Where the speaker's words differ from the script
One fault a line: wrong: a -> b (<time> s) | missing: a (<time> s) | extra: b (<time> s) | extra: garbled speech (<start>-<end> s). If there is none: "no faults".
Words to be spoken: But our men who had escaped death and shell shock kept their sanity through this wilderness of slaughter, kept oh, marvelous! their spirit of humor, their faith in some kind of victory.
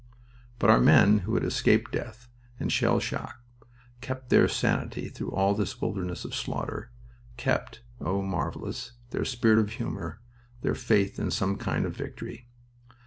extra: all (5.3 s)